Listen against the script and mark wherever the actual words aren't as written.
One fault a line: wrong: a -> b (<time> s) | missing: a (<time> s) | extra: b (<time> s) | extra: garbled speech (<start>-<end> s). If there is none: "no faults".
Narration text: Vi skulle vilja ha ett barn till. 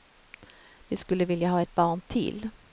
no faults